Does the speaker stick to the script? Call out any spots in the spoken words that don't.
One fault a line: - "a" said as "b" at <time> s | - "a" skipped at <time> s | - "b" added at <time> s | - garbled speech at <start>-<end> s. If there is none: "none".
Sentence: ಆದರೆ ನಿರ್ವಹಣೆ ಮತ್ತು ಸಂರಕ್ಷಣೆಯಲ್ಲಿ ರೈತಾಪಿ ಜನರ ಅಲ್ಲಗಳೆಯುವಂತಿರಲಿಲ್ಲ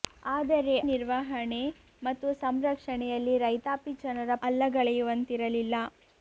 none